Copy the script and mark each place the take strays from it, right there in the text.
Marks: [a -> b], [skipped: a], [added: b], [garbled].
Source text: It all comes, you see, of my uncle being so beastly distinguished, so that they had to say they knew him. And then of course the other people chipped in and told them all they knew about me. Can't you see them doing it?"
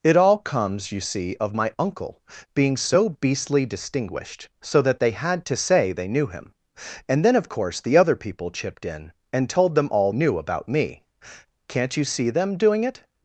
It all comes, you see, of my uncle being so beastly distinguished, so that they had to say they knew him. And then of course the other people chipped in and told them all [skipped: they] knew about me. Can't you see them doing it?"